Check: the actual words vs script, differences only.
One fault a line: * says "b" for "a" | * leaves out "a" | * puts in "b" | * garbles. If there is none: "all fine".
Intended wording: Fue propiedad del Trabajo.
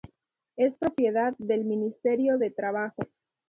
* says "Es" for "Fue"
* puts in "Ministerio de"